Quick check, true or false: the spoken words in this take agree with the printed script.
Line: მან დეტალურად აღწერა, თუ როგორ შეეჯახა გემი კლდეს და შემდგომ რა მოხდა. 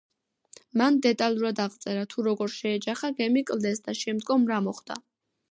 true